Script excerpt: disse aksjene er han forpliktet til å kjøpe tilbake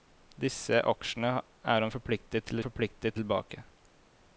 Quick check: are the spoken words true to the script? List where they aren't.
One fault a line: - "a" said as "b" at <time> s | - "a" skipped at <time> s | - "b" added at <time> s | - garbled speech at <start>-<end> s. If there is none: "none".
- "kjøpe" said as "forpliktet" at 2.6 s